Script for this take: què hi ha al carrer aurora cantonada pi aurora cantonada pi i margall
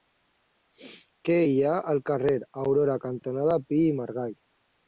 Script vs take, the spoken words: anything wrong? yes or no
yes